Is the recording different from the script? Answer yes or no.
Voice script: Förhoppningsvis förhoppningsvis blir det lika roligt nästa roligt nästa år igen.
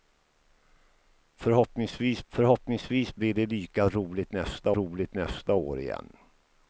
no